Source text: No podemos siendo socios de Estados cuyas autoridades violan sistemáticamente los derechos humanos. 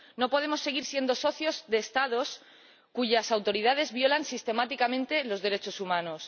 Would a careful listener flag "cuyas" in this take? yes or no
no